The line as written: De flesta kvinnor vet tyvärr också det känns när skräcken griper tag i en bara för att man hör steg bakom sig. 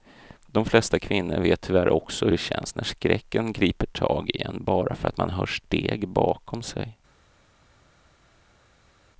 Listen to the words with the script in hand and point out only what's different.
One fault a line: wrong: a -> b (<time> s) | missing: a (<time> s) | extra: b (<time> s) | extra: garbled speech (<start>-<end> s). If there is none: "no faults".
no faults